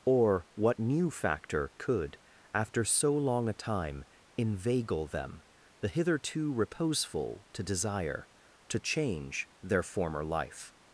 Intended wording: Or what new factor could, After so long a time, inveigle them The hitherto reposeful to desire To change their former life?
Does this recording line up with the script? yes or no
yes